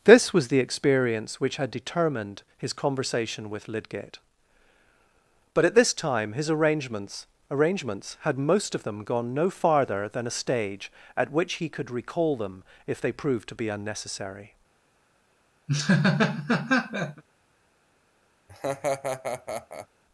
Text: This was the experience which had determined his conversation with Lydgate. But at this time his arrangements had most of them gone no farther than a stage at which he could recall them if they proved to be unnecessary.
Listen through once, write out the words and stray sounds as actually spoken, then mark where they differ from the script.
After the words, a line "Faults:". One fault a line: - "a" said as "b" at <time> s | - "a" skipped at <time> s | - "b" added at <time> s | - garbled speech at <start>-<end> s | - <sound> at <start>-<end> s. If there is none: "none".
This was the experience which had determined his conversation with Lydgate. But at this time his arrangements arrangements had most of them gone no farther than a stage at which he could recall them if they proved to be unnecessary.
Faults:
- "arrangements" added at 7.5 s
- laugh at 15.7-17.2 s
- laugh at 18.5-19.9 s